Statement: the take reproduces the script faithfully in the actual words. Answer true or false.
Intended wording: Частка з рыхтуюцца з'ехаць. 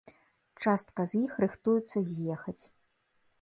false